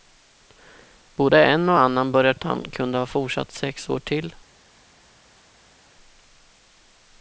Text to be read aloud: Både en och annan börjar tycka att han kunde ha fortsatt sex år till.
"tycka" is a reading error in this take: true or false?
true